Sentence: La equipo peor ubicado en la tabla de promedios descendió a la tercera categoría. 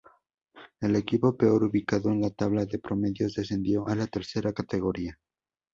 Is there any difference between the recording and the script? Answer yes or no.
yes